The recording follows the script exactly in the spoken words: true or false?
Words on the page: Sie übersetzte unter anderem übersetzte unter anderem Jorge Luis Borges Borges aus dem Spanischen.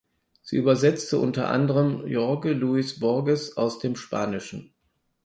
false